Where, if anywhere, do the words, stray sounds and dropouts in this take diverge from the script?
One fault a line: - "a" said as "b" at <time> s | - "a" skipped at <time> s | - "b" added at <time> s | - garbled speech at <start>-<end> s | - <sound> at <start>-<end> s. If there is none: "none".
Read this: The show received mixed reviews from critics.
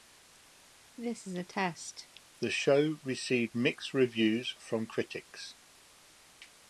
- cough at 1.0-2.2 s